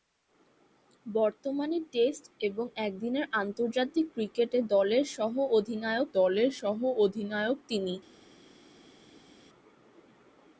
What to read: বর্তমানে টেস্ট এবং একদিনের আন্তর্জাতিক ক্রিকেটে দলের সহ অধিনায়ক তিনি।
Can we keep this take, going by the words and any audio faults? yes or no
no